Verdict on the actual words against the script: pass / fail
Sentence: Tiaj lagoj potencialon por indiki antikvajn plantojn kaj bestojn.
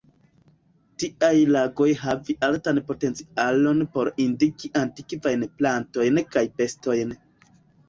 fail